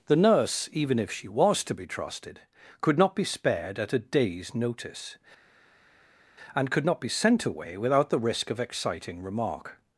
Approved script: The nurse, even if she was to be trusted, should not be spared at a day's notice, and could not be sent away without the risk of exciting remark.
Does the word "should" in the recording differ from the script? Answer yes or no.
yes